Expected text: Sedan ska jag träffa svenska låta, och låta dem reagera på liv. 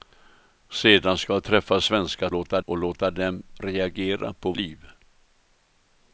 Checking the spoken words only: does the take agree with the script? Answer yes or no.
yes